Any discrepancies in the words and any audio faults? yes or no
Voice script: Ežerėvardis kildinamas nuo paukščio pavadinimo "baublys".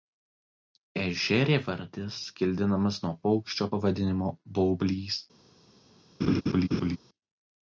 yes